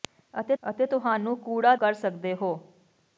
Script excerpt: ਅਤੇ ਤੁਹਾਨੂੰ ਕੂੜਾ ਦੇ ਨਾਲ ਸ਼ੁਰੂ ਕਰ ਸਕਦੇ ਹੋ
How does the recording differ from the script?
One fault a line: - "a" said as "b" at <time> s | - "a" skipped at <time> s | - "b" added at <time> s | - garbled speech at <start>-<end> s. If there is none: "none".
- "ਅਤੇ" added at 0.6 s
- "ਦੇ ਨਾਲ ਸ਼ੁਰੂ" skipped at 1.7 s